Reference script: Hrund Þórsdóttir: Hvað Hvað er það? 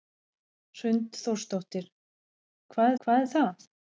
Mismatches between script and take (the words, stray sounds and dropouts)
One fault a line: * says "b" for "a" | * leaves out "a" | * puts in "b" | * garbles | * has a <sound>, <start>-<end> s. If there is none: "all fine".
all fine